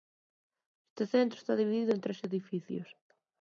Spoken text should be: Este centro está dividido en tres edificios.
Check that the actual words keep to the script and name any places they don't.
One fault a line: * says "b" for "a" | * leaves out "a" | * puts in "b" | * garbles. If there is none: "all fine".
all fine